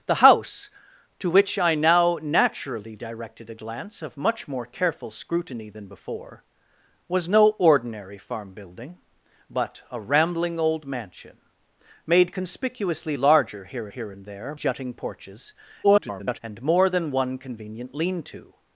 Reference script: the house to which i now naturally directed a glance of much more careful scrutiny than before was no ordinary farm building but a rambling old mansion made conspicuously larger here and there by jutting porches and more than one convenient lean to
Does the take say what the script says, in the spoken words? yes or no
no